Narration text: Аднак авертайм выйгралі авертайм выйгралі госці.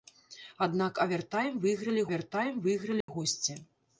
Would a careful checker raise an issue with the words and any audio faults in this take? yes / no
yes